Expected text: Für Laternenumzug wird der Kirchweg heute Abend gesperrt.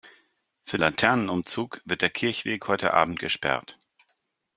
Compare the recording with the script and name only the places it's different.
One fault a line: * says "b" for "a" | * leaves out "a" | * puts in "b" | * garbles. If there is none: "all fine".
all fine